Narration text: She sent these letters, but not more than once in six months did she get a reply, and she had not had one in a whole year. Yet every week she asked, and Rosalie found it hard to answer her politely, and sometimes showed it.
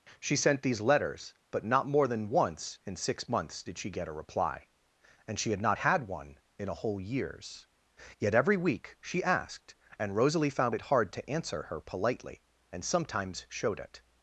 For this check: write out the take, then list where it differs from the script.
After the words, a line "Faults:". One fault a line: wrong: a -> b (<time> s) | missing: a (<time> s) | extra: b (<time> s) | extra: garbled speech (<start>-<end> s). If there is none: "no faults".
She sent these letters, but not more than once in six months did she get a reply, and she had not had one in a whole years. Yet every week she asked, and Rosalie found it hard to answer her politely, and sometimes showed it.
Faults:
wrong: year -> years (7.0 s)